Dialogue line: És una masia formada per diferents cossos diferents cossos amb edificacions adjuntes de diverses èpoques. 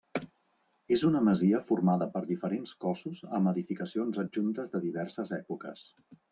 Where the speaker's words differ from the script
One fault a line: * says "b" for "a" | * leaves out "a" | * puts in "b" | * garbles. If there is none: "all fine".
* leaves out "diferents cossos"